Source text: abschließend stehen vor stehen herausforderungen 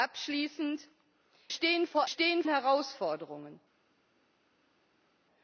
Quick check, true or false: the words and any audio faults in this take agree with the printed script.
true